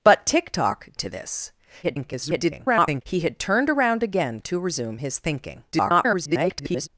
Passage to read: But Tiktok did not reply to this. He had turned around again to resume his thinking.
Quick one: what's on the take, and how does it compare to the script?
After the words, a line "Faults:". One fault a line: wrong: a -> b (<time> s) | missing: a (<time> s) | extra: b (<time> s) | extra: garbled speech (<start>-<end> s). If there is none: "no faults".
But Tiktok to this. [garbled] He had turned around again to resume his thinking. [garbled]
Faults:
missing: did not reply (0.9 s)
extra: garbled speech (1.8-3.0 s)
extra: garbled speech (5.7-6.9 s)